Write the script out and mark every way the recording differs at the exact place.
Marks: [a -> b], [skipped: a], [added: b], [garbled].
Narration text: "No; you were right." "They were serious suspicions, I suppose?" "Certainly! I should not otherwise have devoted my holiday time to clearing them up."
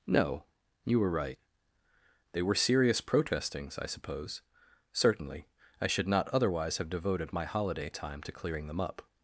"No; you were right." "They were serious [suspicions, -> protestings] I suppose?" "Certainly! I should not otherwise have devoted my holiday time to clearing them up."